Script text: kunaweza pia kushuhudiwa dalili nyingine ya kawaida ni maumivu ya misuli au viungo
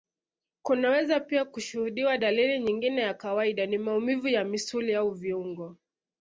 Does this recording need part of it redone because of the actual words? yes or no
no